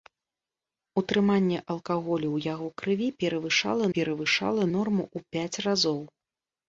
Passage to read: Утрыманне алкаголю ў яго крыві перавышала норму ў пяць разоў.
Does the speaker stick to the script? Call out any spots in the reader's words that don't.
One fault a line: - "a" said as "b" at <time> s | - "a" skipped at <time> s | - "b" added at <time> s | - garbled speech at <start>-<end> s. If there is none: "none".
- "перавышала" added at 4.0 s